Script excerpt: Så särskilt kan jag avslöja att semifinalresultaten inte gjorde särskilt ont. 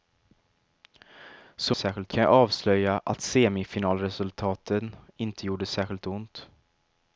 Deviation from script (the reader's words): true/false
false